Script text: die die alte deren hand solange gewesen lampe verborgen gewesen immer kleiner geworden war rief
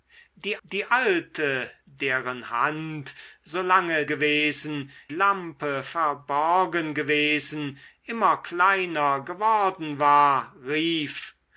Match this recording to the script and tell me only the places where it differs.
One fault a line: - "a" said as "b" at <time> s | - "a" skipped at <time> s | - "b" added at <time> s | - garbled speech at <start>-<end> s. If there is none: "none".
none